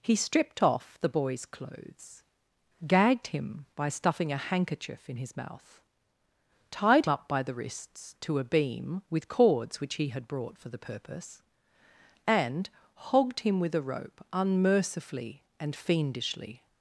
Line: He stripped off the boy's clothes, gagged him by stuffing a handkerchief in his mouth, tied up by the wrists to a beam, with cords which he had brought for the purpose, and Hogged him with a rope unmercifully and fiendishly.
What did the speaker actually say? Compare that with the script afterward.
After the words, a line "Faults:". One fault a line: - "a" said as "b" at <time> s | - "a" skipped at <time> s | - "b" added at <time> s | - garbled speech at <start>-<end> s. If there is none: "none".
He stripped off the boy's clothes, gagged him by stuffing a handkerchief in his mouth, tied up by the wrists to a beam, with cords which he had brought for the purpose, and Hogged him with a rope unmercifully and fiendishly.
Faults:
none